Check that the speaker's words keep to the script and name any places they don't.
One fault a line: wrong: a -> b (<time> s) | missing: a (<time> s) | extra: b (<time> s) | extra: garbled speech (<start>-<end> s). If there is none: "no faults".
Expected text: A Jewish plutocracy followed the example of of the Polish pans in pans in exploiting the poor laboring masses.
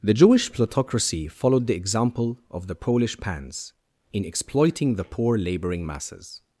wrong: A -> The (0.0 s)
missing: of (2.6 s)
missing: pans in (4.2 s)